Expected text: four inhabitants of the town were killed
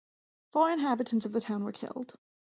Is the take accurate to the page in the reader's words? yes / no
yes